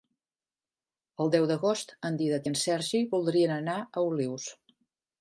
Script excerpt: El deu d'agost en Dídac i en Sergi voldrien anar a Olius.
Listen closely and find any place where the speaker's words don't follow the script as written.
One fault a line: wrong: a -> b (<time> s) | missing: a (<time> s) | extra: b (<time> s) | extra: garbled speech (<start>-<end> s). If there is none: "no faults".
no faults